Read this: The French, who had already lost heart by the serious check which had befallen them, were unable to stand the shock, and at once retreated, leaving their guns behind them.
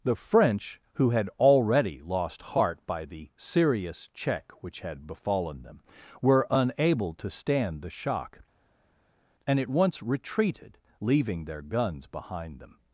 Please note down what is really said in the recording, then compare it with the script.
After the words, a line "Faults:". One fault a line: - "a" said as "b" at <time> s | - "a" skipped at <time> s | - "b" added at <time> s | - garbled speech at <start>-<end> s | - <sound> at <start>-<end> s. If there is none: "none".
The French, who had already lost heart by the serious check which had befallen them, were unable to stand the shock, and at once retreated, leaving their guns behind them.
Faults:
none